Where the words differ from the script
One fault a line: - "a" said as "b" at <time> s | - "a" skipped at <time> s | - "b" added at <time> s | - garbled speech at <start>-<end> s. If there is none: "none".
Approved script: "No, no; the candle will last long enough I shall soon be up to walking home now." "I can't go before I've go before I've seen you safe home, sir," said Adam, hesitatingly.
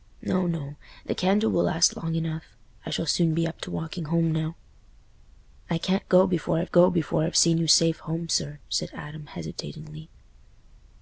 none